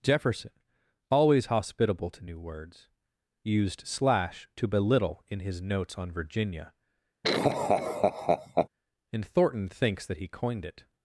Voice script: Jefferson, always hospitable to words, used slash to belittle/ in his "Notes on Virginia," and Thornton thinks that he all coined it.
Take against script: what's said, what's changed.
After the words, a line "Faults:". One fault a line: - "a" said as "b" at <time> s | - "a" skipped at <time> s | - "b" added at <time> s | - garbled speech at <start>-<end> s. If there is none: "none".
Jefferson, always hospitable to new words, used slash to belittle/ in his "Notes on Virginia," and Thornton thinks that he coined it.
Faults:
- "new" added at 2.2 s
- "all" skipped at 10.3 s